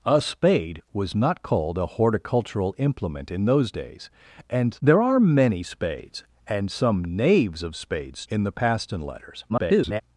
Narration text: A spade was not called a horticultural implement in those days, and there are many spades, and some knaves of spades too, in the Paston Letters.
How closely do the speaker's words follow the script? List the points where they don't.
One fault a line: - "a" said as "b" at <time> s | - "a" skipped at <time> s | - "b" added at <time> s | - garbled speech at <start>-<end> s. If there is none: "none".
- "too" skipped at 8.2 s
- garbled speech at 9.5-10.0 s